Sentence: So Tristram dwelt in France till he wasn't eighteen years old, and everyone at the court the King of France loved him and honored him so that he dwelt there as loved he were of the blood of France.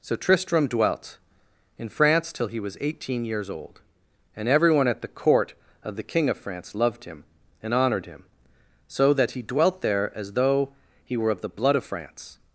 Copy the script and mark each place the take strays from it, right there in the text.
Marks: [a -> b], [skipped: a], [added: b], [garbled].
So Tristram dwelt in France till he [wasn't -> was] eighteen years old, and everyone at the court [added: of] the King of France loved him and honored him so that he dwelt there as [loved -> though] he were of the blood of France.